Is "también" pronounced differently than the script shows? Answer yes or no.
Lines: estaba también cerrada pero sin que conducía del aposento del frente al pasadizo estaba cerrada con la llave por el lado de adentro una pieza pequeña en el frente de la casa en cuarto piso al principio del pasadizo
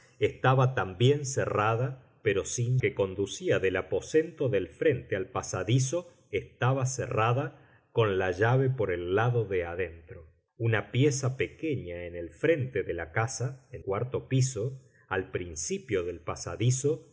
no